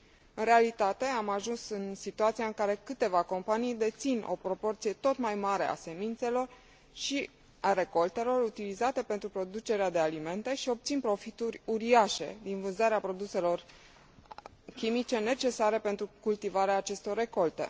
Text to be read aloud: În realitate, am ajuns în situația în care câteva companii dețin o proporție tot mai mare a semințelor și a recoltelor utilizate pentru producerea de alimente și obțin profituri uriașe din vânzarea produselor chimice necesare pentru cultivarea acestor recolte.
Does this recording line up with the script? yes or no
yes